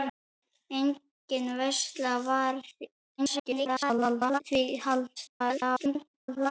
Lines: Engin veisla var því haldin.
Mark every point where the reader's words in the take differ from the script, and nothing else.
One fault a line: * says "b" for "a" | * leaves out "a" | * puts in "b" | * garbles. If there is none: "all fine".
* garbles
* garbles